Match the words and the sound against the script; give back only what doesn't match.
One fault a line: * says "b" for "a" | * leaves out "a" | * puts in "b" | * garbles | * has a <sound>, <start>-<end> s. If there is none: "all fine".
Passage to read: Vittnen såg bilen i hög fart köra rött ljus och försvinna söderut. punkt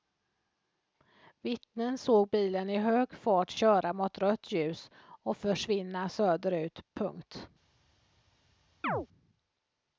* puts in "mot"
* has a chirp, 8.8-9.1 s